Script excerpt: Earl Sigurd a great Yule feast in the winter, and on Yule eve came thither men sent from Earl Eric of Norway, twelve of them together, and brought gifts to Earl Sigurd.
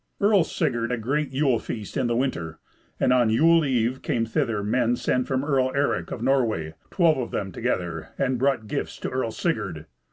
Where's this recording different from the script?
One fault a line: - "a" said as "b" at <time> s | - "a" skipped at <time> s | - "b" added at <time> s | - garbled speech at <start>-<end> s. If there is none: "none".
none